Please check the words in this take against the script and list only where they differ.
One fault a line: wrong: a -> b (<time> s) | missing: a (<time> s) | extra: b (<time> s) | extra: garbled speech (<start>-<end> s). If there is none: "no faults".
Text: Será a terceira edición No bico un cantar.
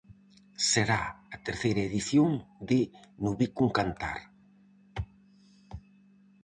extra: de (2.7 s)